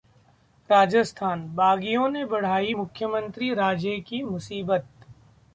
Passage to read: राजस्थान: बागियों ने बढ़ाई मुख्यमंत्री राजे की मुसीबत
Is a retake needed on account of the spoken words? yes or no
no